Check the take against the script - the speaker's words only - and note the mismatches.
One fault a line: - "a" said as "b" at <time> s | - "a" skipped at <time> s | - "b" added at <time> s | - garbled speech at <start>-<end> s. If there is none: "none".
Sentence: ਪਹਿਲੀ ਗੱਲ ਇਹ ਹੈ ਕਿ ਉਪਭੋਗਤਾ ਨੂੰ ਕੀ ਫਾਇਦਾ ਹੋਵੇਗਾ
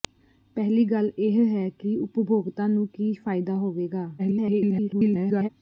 - garbled speech at 4.2-5.5 s